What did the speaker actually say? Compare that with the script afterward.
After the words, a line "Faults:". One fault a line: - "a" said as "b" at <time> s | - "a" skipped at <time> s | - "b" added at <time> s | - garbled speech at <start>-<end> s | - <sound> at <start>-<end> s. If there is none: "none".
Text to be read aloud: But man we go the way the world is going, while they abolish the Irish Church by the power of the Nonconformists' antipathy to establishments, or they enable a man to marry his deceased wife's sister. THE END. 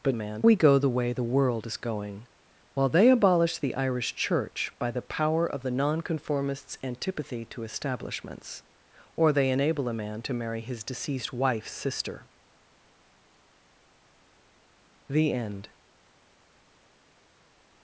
But man we go the way the world is going, while they abolish the Irish Church by the power of the Nonconformists' antipathy to establishments, or they enable a man to marry his deceased wife's sister. THE END.
Faults:
none